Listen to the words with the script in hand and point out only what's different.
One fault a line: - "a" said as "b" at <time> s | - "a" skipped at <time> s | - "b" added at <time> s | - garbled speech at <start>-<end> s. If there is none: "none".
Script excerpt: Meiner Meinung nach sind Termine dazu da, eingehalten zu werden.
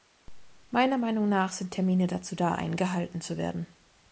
none